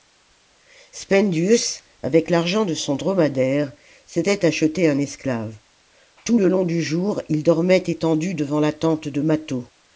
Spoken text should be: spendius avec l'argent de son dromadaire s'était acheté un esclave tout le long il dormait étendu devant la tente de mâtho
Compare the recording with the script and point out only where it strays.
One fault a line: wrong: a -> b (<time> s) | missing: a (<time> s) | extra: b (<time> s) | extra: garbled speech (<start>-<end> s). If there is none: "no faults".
extra: du jour (6.6 s)